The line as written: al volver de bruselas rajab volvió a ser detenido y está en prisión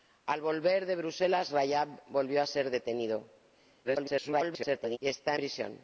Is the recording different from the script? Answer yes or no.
yes